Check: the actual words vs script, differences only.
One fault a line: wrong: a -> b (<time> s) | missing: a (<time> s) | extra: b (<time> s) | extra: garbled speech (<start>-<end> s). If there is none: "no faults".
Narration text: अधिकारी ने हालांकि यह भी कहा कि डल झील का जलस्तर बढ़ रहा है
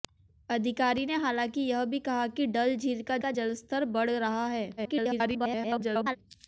extra: का (3.2 s)
extra: garbled speech (4.8-6.2 s)